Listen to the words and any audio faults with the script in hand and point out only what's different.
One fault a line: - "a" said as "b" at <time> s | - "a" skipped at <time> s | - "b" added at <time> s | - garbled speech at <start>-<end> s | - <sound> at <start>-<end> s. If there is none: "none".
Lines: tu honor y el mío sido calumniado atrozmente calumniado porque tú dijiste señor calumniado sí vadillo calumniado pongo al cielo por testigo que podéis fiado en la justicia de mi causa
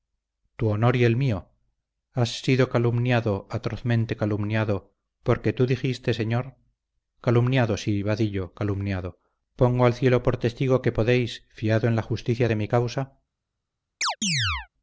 - "has" added at 2.1 s
- chirp at 14.0-14.7 s